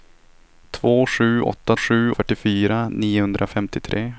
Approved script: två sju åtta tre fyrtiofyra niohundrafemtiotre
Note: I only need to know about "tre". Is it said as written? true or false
false